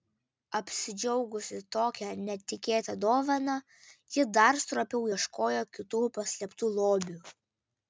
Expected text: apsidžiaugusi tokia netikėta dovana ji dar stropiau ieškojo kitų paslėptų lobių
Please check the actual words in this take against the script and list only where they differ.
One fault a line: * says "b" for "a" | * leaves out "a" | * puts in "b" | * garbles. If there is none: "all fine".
all fine